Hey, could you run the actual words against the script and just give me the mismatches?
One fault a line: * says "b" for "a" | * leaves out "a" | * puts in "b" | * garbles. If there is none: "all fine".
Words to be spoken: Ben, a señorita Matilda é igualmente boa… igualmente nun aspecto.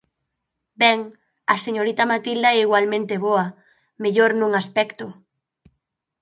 * says "mellor" for "igualmente"